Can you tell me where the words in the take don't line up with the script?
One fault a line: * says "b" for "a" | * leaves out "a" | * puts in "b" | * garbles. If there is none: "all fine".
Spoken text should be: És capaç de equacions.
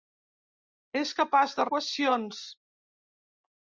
all fine